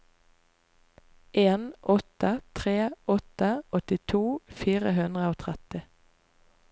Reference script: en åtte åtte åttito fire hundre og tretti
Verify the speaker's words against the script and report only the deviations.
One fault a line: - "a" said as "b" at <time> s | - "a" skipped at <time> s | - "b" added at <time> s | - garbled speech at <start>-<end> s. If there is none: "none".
- "tre" added at 2.5 s